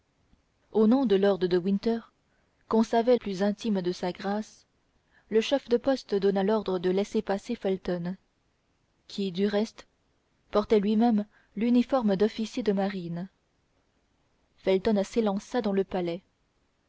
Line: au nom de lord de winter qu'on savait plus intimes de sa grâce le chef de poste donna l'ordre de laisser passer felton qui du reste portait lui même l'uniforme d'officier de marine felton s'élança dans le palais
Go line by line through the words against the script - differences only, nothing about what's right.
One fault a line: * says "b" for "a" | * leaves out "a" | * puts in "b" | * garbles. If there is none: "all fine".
all fine